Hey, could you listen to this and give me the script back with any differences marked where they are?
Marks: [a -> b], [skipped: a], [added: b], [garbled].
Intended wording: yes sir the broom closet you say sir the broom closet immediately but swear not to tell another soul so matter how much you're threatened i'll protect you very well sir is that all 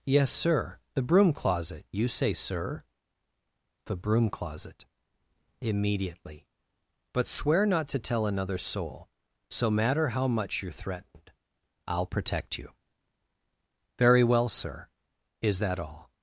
yes sir the broom closet you say sir the broom closet immediately but swear not to tell another soul so matter how much you're threatened i'll protect you very well sir is that all